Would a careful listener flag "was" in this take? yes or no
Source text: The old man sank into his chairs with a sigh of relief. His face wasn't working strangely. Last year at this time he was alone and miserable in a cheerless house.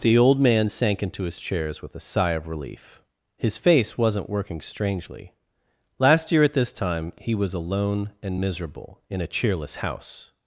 no